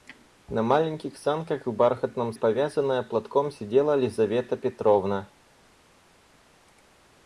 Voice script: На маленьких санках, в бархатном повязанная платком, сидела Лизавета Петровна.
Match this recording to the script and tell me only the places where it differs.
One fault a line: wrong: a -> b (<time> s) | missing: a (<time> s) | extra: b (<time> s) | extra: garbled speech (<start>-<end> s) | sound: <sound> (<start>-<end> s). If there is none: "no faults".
no faults